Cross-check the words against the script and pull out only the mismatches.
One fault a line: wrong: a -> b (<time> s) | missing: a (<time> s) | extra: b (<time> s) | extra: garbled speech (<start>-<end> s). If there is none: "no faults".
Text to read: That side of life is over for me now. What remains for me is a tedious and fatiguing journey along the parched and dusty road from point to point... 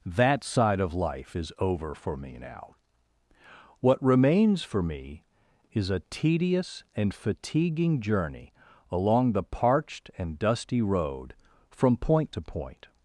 no faults